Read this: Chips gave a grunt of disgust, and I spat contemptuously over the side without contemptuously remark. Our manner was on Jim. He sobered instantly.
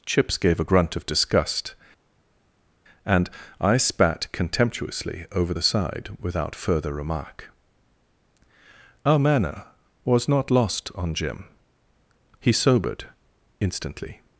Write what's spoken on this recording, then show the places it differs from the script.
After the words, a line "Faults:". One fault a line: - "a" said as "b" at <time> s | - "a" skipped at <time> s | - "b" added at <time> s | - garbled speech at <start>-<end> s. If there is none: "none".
Chips gave a grunt of disgust, and I spat contemptuously over the side without further remark. Our manner was not lost on Jim. He sobered instantly.
Faults:
- "contemptuously" said as "further" at 6.5 s
- "not lost" added at 10.3 s